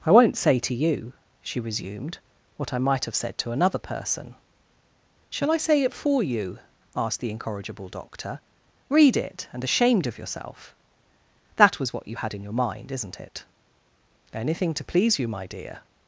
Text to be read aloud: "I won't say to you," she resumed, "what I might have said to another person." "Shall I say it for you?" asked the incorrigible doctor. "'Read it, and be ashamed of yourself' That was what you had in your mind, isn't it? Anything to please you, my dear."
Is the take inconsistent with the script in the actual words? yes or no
yes